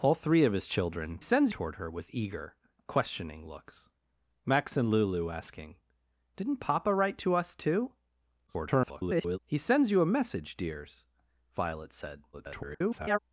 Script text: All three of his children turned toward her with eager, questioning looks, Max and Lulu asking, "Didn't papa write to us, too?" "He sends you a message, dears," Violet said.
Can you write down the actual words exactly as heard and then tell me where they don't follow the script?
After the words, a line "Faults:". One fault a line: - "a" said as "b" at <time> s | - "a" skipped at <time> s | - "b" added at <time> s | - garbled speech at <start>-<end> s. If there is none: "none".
All three of his children sends toward her with eager, questioning looks, Max and Lulu asking, "Didn't papa write to us, too?" [garbled] "He sends you a message, dears," Violet said. [garbled]
Faults:
- "turned" said as "sends" at 1.2 s
- garbled speech at 8.5-9.4 s
- garbled speech at 12.3-13.2 s